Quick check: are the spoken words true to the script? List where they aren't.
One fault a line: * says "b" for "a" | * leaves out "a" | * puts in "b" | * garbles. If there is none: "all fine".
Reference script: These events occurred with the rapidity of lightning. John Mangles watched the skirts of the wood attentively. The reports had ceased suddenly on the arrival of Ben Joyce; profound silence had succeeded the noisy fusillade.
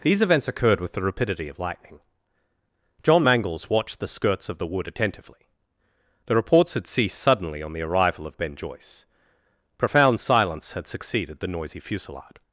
all fine